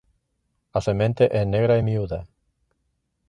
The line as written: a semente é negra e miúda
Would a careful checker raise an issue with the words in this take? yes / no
no